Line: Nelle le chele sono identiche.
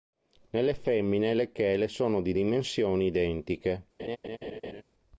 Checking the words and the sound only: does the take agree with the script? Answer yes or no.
no